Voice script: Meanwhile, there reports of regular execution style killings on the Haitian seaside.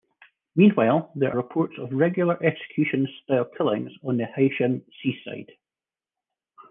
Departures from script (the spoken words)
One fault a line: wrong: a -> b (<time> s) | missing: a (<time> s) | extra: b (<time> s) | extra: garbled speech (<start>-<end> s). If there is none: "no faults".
no faults